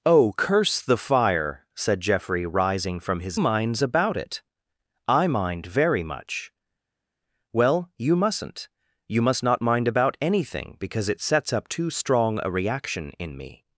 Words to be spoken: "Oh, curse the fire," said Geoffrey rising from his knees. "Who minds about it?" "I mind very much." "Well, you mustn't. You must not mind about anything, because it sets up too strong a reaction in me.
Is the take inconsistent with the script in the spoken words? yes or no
yes